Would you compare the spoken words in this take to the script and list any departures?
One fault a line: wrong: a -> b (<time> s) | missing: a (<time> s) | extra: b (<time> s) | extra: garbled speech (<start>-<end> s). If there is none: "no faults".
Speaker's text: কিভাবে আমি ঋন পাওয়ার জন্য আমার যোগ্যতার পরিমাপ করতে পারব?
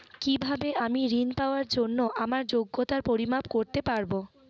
no faults